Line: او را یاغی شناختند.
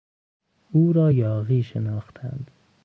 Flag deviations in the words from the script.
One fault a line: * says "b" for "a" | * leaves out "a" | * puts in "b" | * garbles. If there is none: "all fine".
all fine